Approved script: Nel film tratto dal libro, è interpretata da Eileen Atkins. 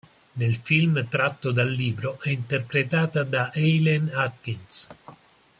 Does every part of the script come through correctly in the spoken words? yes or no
yes